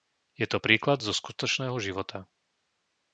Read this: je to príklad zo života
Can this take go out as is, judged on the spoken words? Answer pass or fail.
fail